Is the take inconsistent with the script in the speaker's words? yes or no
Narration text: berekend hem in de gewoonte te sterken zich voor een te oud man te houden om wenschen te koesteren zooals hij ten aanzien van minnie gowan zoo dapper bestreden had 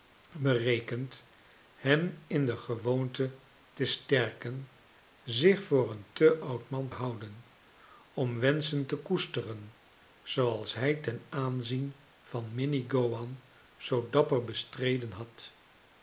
yes